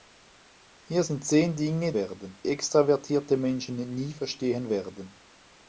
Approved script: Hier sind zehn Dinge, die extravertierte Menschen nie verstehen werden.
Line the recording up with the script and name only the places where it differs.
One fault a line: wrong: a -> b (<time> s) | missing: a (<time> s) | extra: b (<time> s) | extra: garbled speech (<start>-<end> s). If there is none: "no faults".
wrong: die -> werden (1.9 s)